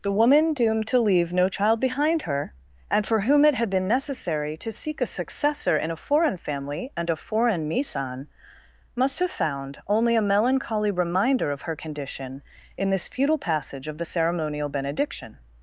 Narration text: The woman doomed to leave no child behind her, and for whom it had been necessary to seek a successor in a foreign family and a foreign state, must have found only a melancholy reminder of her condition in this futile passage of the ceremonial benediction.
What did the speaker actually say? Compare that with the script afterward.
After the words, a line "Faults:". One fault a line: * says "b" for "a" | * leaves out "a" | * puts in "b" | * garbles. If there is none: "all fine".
The woman doomed to leave no child behind her, and for whom it had been necessary to seek a successor in a foreign family and a foreign misan, must have found only a melancholy reminder of her condition in this futile passage of the ceremonial benediction.
Faults:
* says "misan" for "state"